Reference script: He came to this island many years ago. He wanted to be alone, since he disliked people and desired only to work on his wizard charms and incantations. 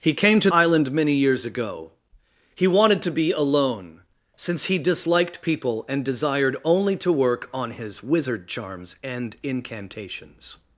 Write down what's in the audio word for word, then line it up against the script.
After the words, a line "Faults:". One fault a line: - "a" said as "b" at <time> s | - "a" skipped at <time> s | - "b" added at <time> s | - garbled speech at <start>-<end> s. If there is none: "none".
He came to island many years ago. He wanted to be alone, since he disliked people and desired only to work on his wizard charms and incantations.
Faults:
- "this" skipped at 0.5 s